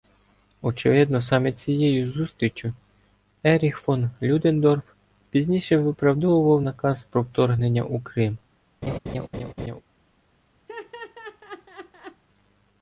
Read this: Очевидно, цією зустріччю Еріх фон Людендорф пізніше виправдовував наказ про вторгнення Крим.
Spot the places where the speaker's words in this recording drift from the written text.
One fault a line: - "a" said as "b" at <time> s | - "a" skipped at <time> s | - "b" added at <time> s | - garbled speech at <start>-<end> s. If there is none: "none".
- "саме" added at 1.2 s
- "у" added at 7.8 s